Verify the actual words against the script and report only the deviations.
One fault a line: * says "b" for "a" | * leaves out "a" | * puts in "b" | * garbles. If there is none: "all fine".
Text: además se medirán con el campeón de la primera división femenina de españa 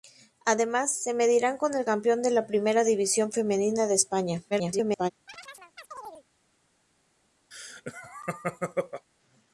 * garbles